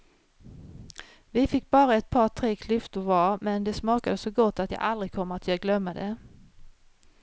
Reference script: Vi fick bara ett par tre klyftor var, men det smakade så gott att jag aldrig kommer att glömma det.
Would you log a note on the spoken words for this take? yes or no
no